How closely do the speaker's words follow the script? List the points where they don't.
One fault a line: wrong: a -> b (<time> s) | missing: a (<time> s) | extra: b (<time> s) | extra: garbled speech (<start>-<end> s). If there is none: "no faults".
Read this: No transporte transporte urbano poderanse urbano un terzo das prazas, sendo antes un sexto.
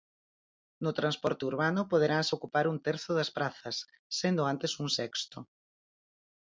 missing: transporte (1.4 s)
wrong: urbano -> ocupar (2.4 s)